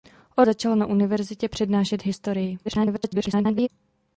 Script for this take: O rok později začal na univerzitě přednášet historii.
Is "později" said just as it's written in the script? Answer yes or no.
no